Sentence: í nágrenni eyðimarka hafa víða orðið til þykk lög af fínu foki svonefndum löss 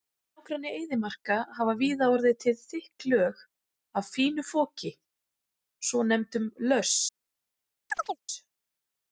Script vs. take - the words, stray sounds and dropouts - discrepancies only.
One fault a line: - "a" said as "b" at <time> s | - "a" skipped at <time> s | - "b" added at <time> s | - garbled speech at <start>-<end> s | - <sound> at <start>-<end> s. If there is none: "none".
- chirp at 7.9-8.2 s